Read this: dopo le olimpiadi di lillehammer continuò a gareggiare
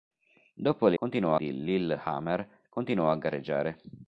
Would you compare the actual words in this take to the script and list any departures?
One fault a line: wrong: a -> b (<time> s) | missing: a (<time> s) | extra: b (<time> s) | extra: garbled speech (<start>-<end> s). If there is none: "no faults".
wrong: olimpiadi -> continuò (0.9 s)